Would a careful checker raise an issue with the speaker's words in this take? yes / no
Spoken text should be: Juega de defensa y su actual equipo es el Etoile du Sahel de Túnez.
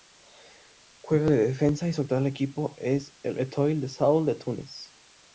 no